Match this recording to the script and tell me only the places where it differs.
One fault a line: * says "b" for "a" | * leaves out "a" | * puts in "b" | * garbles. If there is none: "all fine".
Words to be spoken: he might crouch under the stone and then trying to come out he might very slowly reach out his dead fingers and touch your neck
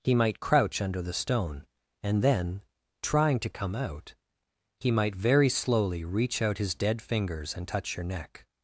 all fine